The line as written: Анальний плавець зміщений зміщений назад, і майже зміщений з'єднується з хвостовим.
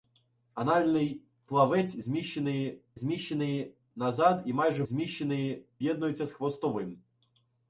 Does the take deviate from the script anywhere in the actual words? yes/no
no